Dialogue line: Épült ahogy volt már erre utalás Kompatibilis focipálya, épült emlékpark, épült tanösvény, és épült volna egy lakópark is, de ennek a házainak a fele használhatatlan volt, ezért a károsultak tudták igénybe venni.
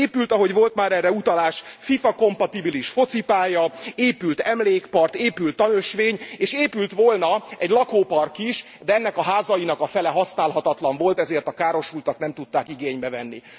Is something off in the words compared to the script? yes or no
yes